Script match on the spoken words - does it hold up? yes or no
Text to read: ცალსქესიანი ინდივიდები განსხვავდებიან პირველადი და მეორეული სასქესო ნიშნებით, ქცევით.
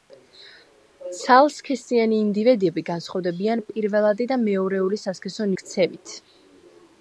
no